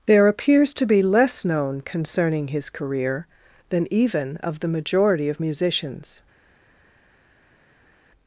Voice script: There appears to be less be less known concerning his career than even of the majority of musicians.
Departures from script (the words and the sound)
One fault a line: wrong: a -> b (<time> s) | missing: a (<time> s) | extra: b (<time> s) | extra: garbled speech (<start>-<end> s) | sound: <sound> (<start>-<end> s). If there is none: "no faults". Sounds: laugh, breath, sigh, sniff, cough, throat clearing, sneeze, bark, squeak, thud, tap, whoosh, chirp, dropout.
missing: be less (1.4 s)